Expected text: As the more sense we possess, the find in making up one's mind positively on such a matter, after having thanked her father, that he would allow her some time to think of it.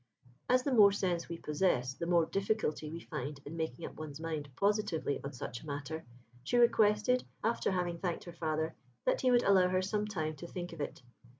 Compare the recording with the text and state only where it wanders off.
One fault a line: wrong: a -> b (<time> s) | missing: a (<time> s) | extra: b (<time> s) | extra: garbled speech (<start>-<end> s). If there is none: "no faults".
extra: more difficulty we (2.1 s)
extra: she requested (6.4 s)